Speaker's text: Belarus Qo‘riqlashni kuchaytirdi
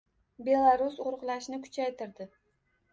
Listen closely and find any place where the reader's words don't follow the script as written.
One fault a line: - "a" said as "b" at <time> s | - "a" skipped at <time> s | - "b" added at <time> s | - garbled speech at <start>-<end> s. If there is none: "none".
none